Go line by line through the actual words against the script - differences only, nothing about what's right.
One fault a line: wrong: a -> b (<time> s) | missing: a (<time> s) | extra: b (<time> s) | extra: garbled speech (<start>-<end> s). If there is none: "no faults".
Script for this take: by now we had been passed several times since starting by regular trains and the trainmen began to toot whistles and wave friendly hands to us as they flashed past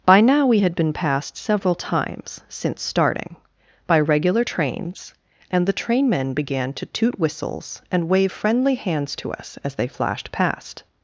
no faults